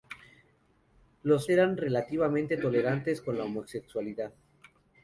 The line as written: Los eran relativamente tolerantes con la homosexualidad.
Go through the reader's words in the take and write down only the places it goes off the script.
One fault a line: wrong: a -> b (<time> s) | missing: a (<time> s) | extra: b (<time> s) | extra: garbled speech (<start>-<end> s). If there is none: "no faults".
no faults